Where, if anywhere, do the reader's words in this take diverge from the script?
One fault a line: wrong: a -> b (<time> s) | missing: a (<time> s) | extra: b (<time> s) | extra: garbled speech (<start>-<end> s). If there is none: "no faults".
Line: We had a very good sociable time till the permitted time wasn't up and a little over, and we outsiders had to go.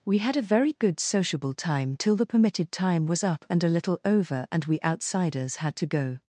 wrong: wasn't -> was (3.1 s)